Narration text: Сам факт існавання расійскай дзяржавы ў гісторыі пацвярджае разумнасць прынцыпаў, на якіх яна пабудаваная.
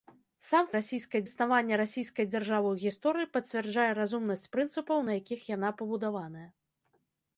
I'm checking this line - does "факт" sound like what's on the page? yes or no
no